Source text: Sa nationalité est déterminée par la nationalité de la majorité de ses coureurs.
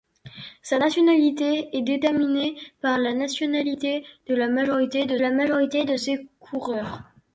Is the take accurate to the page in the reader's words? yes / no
no